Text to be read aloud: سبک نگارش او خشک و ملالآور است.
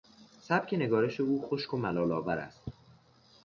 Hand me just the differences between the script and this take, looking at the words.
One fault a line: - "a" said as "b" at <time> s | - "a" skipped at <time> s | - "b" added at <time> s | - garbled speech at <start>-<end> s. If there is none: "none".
none